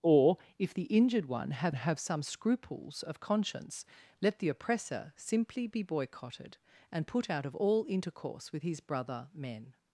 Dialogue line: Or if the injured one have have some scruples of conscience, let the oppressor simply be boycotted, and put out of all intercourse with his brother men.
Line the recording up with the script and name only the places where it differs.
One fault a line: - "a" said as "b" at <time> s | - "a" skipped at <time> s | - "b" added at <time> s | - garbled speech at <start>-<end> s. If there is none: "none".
none